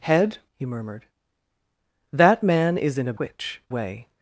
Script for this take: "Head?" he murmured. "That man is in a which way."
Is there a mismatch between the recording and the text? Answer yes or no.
no